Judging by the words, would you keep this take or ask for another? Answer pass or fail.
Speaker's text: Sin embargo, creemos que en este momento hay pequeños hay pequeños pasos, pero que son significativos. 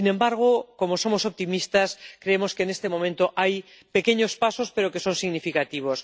fail